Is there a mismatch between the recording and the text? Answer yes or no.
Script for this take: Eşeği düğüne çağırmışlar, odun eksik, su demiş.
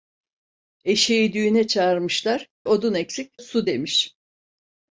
no